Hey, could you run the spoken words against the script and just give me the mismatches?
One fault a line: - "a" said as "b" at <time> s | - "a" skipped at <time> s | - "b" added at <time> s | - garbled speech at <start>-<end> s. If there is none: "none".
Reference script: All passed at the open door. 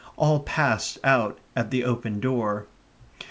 - "out" added at 1.0 s